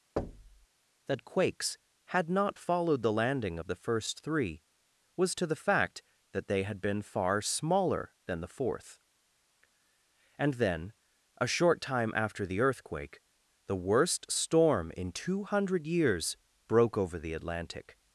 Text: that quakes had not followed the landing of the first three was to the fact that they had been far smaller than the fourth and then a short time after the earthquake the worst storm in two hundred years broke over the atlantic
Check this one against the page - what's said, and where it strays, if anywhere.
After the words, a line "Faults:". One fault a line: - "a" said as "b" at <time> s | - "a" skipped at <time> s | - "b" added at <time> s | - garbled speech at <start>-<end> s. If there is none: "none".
that quakes had not followed the landing of the first three was to the fact that they had been far smaller than the fourth and then a short time after the earthquake the worst storm in two hundred years broke over the atlantic
Faults:
none